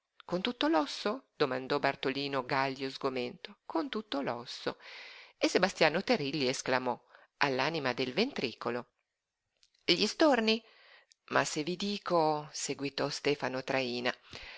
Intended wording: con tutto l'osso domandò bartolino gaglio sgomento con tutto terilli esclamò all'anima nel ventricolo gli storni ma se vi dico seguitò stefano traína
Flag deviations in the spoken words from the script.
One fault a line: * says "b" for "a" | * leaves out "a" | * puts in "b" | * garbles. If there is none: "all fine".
* puts in "l'osso e sebastiano"
* says "del" for "nel"